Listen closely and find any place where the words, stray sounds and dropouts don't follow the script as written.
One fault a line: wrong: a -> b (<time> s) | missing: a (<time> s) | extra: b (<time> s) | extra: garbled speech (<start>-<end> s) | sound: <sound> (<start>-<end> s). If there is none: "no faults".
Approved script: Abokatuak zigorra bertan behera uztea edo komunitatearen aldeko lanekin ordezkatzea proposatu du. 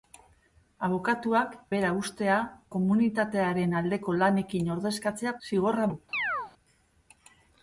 missing: zigorra bertan (1.5 s)
missing: edo (2.4 s)
wrong: proposatu -> zigorra (5.5 s)
sound: chirp (6.1-6.5 s)